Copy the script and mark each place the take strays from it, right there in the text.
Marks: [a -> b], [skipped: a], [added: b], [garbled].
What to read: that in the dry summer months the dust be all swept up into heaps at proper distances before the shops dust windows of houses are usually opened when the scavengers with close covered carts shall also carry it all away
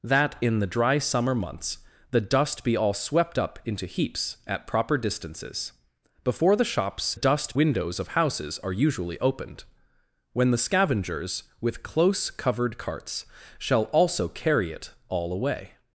that in the dry summer months the dust be all swept up into heaps at proper distances before the shops dust windows of houses are usually opened when the scavengers with close covered carts shall also carry it all away